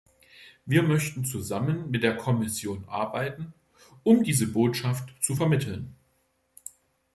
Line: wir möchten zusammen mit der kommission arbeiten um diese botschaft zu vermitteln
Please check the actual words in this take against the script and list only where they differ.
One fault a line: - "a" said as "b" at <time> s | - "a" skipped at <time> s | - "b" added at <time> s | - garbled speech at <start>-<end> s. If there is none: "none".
none